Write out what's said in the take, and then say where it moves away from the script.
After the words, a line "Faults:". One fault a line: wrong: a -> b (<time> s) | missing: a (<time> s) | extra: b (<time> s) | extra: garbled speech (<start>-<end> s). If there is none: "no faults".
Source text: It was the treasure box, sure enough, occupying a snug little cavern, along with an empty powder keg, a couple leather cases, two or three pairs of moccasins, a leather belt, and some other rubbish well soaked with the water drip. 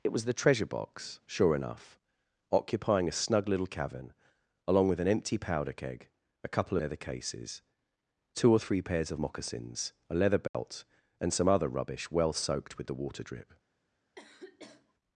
It was the treasure box, sure enough, occupying a snug little cavern, along with an empty powder keg, a couple leather cases, two or three pairs of moccasins, a leather belt, and some other rubbish well soaked with the water drip.
Faults:
no faults